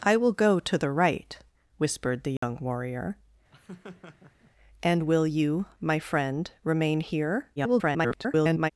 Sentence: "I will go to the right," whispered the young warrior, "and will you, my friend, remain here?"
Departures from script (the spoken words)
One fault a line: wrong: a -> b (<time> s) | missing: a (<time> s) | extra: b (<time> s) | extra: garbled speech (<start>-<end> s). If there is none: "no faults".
extra: garbled speech (7.6-8.7 s)